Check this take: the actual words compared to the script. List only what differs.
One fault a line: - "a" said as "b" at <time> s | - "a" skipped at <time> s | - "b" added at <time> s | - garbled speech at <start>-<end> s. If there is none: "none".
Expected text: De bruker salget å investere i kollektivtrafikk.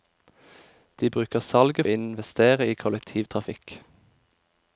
none